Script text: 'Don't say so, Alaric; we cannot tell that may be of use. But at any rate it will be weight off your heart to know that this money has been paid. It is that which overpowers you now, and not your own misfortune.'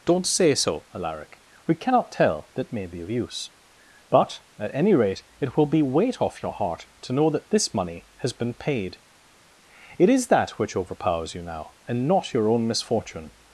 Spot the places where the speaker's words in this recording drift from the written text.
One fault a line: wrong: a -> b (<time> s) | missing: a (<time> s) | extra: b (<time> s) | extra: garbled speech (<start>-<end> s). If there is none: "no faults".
no faults